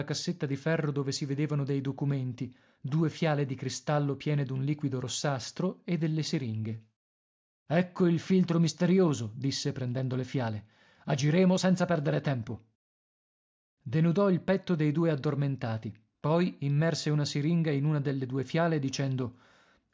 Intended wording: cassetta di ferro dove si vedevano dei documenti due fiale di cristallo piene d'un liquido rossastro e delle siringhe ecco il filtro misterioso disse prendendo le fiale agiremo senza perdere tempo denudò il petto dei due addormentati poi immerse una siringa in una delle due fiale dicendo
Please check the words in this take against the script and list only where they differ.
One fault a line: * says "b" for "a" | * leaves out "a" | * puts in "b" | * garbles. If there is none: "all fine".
all fine